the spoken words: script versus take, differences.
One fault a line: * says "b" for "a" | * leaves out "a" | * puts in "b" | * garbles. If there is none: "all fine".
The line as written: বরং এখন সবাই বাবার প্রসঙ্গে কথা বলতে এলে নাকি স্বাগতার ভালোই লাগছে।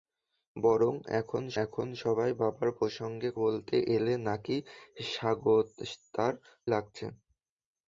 * puts in "এখন"
* leaves out "কথা"
* leaves out "ভালোই"